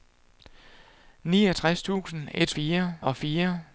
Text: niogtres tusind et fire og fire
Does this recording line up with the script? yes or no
yes